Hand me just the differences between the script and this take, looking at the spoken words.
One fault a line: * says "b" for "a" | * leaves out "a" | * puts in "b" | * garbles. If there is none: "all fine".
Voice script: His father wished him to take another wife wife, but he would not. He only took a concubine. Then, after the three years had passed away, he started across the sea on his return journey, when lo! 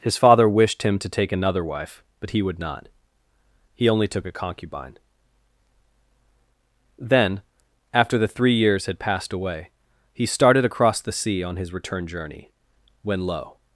* leaves out "wife"